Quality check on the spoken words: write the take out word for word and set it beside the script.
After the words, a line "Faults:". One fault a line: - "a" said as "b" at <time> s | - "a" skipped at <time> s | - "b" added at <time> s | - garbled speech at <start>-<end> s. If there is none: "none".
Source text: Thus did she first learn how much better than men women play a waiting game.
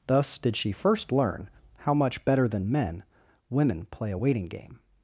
Thus did she first learn how much better than men women play a waiting game.
Faults:
none